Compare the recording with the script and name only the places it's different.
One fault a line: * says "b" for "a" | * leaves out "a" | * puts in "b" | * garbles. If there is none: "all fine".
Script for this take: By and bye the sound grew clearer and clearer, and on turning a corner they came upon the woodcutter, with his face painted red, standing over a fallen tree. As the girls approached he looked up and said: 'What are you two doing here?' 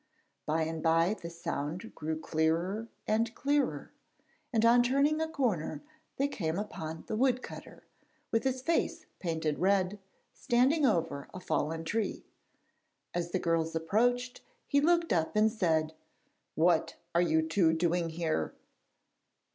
all fine